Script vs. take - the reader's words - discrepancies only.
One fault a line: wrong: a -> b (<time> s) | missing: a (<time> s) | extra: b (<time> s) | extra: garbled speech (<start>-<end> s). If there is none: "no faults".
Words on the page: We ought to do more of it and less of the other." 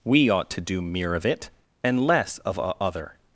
wrong: more -> mere (0.8 s)
wrong: the -> a (2.6 s)